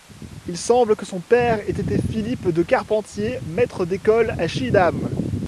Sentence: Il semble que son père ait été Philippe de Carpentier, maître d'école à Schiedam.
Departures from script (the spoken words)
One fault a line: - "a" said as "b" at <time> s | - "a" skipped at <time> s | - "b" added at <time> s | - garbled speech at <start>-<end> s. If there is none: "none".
none